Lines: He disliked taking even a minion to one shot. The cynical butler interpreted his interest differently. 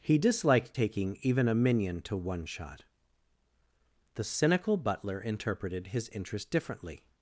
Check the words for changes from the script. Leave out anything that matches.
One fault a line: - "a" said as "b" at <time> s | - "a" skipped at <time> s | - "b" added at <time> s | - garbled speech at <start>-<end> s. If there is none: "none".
none